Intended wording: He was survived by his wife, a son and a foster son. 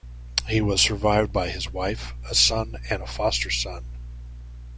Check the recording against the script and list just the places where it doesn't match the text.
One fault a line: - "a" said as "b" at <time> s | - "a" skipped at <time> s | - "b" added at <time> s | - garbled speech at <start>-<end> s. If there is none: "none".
none